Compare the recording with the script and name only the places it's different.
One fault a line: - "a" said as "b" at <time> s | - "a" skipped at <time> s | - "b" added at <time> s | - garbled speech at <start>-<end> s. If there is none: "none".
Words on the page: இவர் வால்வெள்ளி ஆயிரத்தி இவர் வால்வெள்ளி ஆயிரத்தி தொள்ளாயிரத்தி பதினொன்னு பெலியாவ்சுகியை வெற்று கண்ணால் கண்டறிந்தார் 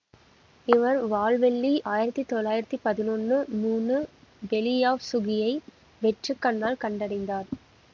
- "இவர் வால்வெள்ளி ஆயிரத்தி" skipped at 2.2 s
- "மூணு" added at 3.6 s